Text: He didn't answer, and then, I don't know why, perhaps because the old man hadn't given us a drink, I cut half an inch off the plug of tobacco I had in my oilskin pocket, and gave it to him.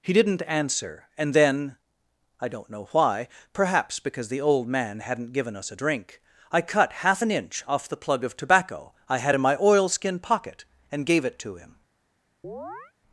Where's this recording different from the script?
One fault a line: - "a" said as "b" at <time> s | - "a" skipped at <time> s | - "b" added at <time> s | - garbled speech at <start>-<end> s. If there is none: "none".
none